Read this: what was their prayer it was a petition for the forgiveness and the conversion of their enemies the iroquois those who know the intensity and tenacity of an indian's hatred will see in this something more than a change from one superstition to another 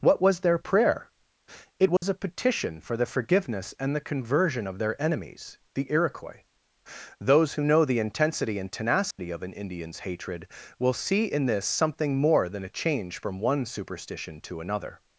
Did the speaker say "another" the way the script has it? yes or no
yes